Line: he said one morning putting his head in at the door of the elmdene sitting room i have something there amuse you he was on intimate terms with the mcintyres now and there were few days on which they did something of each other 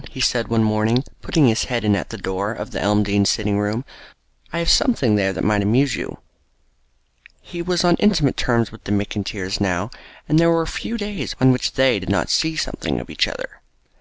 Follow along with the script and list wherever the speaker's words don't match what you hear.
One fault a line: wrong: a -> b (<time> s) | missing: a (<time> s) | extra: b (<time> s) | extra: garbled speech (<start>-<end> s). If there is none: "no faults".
extra: that might (5.3 s)
extra: not see (12.1 s)